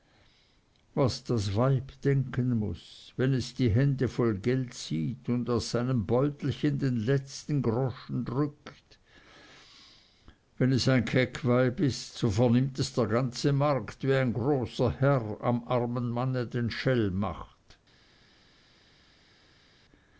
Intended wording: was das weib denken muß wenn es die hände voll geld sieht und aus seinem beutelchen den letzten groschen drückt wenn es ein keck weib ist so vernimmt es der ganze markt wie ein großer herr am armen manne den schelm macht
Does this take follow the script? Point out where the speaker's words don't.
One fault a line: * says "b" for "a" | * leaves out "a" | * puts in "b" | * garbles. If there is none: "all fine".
all fine